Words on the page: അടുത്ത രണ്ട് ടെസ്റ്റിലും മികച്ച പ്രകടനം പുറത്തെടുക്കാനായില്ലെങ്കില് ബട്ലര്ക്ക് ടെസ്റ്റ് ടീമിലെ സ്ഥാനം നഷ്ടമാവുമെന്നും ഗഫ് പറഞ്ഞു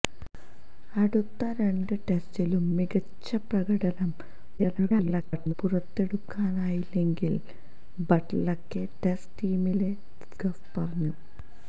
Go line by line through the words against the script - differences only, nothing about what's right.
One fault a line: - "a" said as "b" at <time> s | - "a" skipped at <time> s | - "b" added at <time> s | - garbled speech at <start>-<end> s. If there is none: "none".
- garbled speech at 4.6-5.5 s
- "സ്ഥാനം നഷ്ടമാവുമെന്നും" skipped at 9.9 s